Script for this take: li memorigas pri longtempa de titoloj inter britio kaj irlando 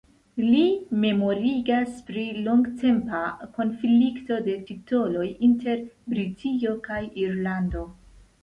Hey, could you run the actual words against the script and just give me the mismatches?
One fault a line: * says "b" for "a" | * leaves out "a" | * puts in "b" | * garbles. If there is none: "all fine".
* puts in "konflikto"